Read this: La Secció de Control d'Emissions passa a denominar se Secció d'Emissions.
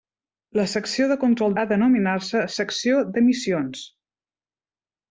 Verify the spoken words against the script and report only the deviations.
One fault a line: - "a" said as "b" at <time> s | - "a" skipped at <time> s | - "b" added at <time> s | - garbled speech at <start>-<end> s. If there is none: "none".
- "d'Emissions passa" skipped at 1.6 s